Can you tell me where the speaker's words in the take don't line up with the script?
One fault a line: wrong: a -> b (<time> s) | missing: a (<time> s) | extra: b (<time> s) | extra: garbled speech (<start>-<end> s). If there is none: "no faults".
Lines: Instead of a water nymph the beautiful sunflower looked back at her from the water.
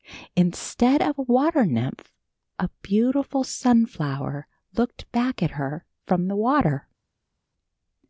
wrong: the -> a (2.6 s)